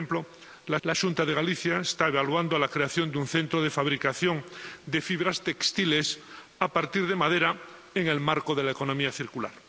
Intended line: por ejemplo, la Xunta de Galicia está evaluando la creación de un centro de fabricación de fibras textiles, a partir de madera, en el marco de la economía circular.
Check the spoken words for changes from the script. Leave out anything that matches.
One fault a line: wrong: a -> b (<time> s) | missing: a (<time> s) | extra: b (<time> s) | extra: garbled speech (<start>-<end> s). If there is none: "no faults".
extra: la (0.8 s)